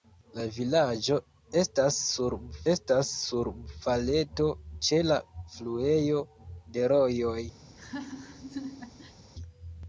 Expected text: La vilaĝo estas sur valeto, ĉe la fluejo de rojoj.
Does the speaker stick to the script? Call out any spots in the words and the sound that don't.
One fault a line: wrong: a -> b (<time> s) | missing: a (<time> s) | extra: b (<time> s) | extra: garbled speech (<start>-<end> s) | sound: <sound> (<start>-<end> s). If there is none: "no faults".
extra: estas sur (2.7 s)
sound: laugh (7.6-9.2 s)